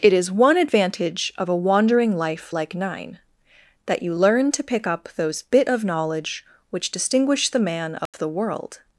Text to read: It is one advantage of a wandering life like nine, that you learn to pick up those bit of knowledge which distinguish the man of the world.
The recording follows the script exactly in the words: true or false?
true